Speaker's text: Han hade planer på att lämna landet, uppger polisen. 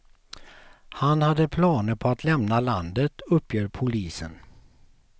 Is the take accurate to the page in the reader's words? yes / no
yes